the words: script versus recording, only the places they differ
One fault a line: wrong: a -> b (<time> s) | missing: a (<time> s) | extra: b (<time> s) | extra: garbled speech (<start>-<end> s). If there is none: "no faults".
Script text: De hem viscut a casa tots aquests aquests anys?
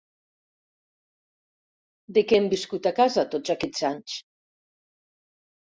extra: què (2.3 s)
missing: aquests (3.9 s)